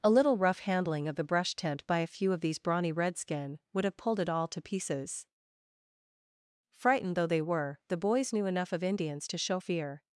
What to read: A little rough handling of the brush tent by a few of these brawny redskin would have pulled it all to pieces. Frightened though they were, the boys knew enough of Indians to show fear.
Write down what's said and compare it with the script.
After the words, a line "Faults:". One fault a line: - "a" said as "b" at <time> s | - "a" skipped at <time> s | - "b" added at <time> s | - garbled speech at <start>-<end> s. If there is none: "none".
A little rough handling of the brush tent by a few of these brawny redskin would have pulled it all to pieces. Frightened though they were, the boys knew enough of Indians to show fear.
Faults:
none